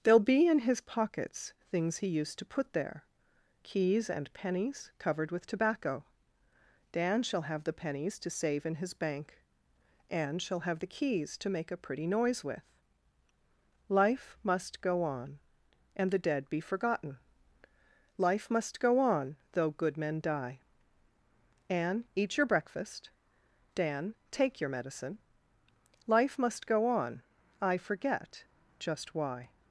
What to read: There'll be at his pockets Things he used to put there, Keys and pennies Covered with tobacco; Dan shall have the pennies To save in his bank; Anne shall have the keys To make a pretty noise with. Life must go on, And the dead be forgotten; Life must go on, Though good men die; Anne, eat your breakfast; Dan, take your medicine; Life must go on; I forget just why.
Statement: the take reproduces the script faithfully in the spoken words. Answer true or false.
false